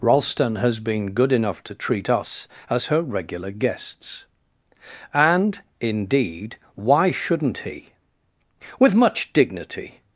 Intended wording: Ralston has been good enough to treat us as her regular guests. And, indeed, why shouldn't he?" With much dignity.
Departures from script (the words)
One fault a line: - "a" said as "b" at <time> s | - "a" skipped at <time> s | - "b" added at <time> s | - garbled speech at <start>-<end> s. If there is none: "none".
none